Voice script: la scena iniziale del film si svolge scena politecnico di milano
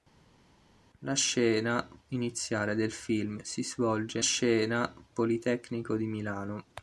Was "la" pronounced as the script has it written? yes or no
yes